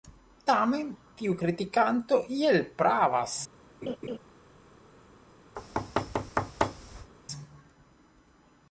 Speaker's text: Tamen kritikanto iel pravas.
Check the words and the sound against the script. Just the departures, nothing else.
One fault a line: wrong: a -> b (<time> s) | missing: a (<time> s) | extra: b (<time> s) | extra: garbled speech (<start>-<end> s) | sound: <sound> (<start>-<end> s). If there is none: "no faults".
extra: tiu (1.2 s)
sound: laugh (3.8-4.2 s)
sound: thud (5.6-7.1 s)